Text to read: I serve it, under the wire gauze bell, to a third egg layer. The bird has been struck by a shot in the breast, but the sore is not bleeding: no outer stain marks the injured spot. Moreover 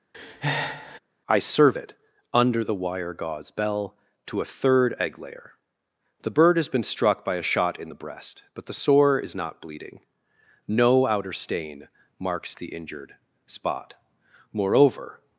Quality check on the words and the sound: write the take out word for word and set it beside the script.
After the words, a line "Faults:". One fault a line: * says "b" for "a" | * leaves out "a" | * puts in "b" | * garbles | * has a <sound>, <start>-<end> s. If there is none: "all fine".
I serve it, under the wire gauze bell, to a third egg layer. The bird has been struck by a shot in the breast, but the sore is not bleeding: no outer stain marks the injured spot. Moreover
Faults:
* has a breath, 0.1-1.0 s